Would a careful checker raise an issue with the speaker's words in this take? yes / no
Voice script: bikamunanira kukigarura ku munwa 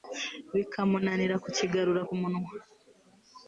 no